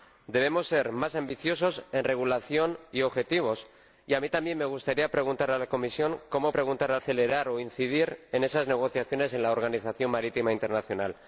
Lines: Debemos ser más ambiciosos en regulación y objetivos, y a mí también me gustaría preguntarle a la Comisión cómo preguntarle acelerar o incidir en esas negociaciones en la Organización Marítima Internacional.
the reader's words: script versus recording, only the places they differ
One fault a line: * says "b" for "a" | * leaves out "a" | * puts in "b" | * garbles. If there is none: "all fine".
all fine